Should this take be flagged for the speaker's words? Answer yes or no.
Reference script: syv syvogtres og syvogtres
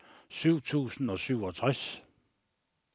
yes